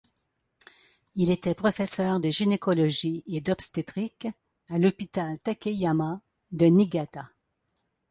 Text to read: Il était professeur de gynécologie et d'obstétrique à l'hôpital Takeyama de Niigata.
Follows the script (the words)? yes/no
yes